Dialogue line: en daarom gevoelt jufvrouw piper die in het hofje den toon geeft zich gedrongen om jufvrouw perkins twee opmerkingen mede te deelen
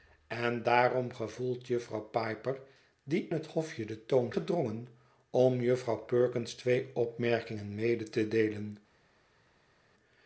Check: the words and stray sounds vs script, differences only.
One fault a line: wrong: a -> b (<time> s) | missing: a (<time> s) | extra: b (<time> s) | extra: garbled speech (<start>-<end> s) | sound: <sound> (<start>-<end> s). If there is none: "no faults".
missing: in (3.3 s)
missing: geeft zich (4.3 s)